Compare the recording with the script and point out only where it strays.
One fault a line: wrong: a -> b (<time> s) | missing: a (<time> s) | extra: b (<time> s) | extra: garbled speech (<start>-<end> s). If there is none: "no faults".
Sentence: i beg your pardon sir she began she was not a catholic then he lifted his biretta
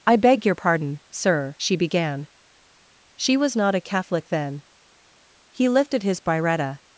no faults